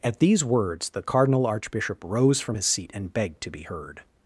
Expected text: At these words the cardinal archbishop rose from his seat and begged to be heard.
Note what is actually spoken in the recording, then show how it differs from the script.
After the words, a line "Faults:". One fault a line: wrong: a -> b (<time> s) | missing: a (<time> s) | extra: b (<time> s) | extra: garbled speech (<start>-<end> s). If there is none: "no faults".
At these words the cardinal archbishop rose from his seat and begged to be heard.
Faults:
no faults